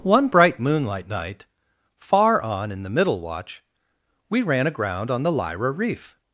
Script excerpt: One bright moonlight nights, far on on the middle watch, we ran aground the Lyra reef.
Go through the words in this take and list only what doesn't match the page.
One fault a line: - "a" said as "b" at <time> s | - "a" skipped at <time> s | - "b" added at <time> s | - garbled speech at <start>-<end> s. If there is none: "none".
- "nights" said as "night" at 1.1 s
- "on" said as "in" at 2.7 s
- "on" added at 5.1 s